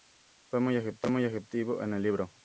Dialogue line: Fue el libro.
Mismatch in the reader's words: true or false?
true